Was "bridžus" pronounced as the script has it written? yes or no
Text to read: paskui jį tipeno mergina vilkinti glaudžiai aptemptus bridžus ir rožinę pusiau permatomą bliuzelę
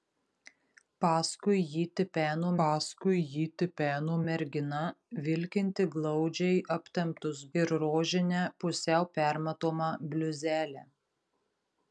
no